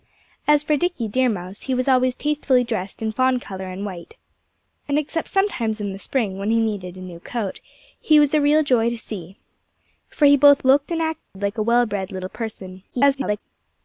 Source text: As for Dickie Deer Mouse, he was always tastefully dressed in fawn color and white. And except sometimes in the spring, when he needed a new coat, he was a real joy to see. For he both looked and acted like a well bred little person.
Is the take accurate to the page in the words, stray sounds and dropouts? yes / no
no